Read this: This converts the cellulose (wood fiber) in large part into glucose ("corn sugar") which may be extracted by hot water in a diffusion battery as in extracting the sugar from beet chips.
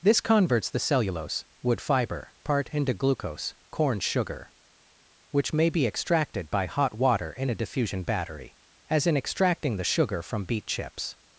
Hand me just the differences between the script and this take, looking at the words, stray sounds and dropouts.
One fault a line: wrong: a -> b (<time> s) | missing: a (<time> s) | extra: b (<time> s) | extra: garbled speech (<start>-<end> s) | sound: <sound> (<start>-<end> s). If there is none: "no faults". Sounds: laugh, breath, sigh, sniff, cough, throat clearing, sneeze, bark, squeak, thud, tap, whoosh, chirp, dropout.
missing: in large (2.3 s)